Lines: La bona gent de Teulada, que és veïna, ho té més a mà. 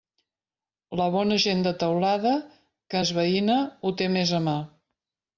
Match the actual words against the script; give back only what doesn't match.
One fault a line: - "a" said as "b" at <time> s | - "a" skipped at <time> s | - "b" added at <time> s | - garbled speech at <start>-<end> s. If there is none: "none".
none